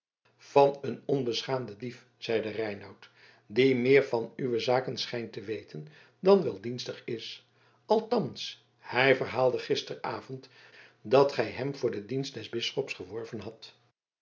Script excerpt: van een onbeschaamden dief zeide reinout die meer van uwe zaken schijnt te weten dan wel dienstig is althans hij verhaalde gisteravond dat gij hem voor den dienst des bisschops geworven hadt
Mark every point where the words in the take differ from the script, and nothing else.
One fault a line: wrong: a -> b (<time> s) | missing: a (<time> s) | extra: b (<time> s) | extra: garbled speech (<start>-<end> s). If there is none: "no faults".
no faults